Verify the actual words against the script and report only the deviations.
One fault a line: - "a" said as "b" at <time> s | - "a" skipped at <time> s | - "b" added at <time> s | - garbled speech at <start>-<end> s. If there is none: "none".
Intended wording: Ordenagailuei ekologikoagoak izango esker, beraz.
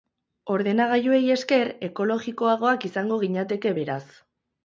- "esker" added at 1.3 s
- "esker" said as "ginateke" at 3.3 s